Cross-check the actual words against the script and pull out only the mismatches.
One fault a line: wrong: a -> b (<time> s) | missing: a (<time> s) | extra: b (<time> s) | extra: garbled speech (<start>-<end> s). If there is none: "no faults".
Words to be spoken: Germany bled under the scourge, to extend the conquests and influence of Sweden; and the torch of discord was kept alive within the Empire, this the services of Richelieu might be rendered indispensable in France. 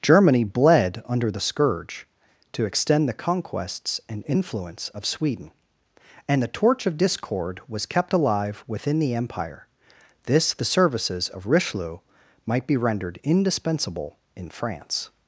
no faults